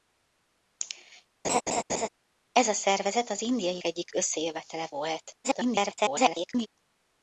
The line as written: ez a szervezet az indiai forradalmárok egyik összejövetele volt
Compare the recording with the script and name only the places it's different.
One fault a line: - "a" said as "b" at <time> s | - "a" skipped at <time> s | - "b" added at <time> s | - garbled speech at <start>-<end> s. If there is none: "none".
- "forradalmárok" skipped at 3.8 s
- garbled speech at 5.4-6.7 s